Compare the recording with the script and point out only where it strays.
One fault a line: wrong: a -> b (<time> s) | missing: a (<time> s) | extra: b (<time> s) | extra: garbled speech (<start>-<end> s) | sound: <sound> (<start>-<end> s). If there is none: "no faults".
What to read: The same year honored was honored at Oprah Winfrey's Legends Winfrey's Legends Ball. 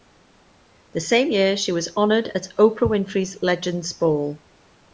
wrong: honored -> she (1.6 s)
missing: Winfrey's Legends (3.9 s)